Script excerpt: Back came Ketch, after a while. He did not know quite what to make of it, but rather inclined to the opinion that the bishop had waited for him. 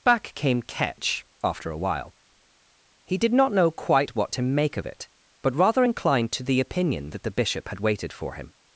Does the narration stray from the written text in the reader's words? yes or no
no